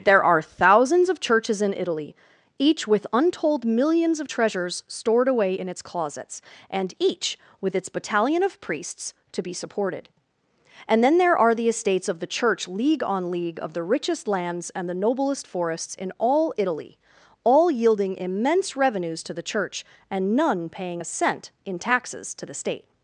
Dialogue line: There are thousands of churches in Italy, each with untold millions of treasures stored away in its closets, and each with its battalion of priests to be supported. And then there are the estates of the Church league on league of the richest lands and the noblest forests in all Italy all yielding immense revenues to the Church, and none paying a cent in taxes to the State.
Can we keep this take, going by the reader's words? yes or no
yes